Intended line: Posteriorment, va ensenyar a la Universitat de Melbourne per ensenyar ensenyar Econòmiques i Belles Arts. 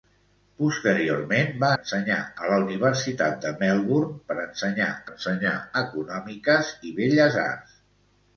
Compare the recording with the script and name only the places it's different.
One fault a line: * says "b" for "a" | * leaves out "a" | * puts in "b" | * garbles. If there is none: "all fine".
all fine